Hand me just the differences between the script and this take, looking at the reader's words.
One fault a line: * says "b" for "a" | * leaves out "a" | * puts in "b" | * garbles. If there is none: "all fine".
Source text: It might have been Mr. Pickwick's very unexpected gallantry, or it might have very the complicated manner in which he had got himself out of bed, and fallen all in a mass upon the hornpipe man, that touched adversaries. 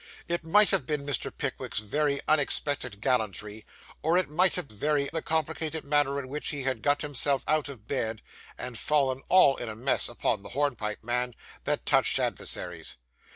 all fine